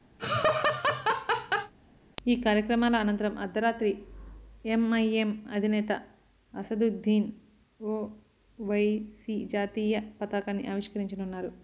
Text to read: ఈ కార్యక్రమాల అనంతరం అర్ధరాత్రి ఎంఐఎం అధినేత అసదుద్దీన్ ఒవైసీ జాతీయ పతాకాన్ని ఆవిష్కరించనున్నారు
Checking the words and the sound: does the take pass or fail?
fail